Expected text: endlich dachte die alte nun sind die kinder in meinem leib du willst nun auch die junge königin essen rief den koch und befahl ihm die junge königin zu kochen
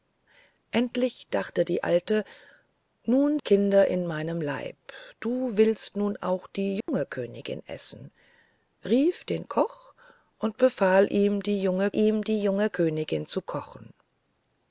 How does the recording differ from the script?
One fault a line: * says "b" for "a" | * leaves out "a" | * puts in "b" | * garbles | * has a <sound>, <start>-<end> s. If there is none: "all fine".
* leaves out "sind die"
* has a dropout, 6.8-6.9 s
* puts in "ihm die junge"